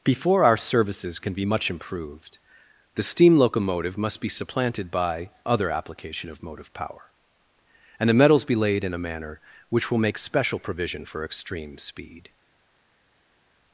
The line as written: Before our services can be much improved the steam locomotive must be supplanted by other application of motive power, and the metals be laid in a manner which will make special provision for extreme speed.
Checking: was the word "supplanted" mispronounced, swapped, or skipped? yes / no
no